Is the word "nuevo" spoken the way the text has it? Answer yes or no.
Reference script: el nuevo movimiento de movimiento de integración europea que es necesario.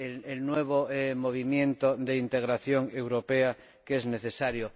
yes